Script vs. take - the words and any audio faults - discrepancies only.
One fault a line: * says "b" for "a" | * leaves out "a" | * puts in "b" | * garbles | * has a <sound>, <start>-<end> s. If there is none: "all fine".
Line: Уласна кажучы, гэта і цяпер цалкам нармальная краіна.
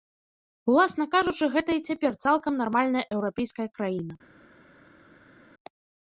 * puts in "еўрапейская"